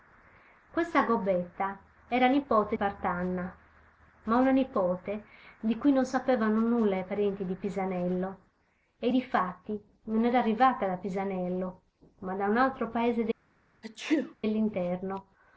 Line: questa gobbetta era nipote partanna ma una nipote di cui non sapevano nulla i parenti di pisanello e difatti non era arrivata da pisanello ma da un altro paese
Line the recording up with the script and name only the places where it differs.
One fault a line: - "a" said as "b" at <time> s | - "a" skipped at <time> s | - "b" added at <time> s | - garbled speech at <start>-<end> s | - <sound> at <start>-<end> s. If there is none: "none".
- sneeze at 13.8-14.3 s